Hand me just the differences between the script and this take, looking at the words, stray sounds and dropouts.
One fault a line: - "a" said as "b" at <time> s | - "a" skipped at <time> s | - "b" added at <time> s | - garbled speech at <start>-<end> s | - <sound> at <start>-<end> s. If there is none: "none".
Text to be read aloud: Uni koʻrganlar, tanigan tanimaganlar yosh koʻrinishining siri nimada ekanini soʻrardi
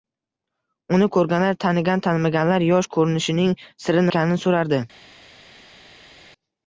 - "nimada" skipped at 4.1 s